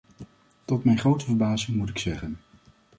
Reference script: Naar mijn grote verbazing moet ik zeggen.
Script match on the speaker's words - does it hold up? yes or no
no